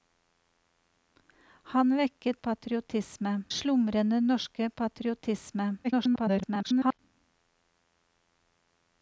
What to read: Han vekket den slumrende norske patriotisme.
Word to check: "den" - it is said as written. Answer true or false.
false